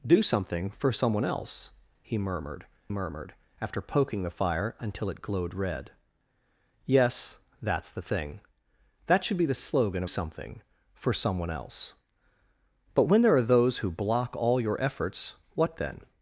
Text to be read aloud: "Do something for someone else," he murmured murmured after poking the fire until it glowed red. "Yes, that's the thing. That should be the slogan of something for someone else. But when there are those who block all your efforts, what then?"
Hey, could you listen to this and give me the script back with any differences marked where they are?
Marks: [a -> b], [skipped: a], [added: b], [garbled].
"Do something for someone else," he murmured murmured after poking the fire until it glowed red. "Yes, that's the thing. That should be the slogan of something for someone else. But when there are those who block all your efforts, what then?"